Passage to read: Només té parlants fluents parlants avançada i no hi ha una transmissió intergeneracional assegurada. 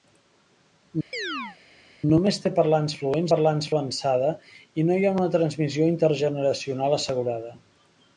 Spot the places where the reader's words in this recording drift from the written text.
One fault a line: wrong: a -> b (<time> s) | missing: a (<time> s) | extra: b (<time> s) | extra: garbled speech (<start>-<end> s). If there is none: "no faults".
no faults